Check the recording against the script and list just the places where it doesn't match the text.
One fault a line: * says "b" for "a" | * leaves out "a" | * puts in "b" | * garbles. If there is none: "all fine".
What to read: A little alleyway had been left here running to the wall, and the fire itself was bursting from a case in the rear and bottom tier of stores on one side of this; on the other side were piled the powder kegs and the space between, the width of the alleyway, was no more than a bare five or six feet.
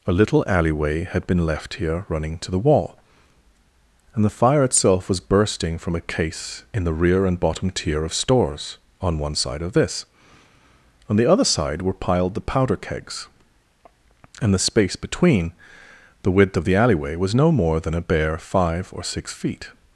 all fine